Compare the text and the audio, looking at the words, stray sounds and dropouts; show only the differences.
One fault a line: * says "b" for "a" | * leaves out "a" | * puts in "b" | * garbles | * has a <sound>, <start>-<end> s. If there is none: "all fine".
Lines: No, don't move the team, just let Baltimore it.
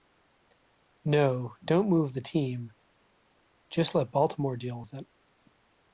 * puts in "deal with"